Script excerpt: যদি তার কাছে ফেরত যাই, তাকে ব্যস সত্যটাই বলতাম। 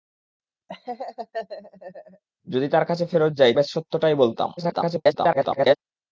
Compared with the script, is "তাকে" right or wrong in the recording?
wrong